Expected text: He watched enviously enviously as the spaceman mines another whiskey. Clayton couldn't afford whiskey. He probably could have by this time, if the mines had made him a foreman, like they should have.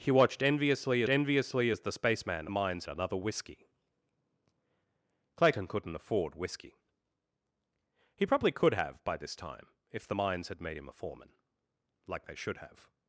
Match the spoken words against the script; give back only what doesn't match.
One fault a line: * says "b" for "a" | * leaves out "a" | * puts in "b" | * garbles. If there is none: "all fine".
all fine